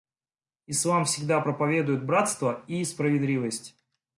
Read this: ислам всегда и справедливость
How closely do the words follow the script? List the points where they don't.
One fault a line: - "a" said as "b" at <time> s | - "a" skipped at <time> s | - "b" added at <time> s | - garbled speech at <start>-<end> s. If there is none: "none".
- "проповедует братство" added at 1.4 s